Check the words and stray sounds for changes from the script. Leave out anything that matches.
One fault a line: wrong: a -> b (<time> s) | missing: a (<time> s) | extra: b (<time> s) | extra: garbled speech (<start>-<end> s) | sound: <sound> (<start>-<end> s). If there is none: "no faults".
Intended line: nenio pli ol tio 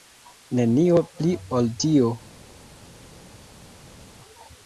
no faults